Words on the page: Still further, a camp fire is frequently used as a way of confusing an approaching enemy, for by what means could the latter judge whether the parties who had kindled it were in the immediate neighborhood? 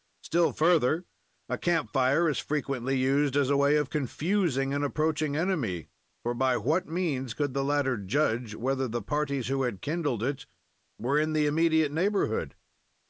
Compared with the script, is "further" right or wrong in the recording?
right